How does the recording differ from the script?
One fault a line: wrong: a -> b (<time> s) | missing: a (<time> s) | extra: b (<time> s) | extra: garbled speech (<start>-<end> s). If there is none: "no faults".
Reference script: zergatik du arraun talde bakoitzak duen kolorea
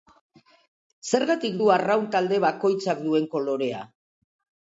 no faults